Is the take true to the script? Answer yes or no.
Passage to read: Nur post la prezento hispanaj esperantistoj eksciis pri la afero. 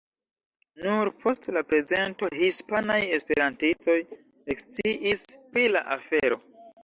yes